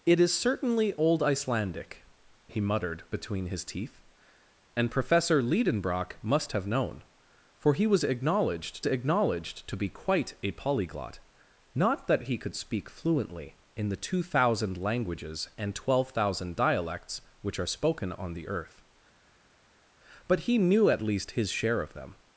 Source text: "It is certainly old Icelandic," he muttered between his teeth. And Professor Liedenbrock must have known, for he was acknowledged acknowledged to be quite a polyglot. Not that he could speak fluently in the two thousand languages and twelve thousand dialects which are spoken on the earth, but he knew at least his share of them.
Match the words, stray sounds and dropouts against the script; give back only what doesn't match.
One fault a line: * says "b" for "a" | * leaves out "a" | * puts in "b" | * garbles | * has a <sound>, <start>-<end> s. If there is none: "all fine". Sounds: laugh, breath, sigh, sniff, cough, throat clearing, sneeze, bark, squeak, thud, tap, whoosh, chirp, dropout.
all fine